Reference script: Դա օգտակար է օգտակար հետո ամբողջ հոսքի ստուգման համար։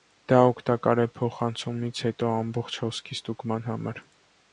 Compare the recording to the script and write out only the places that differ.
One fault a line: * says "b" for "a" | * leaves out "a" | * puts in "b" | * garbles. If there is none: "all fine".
* says "փոխանցումից" for "օգտակար"